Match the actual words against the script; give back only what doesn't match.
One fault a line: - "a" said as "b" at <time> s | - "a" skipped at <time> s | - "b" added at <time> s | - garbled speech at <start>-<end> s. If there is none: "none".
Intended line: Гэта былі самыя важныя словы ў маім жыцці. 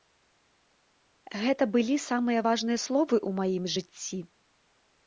none